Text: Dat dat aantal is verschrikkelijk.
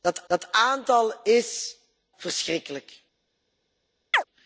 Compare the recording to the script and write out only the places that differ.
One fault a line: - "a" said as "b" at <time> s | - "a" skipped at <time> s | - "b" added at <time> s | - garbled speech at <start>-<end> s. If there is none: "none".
none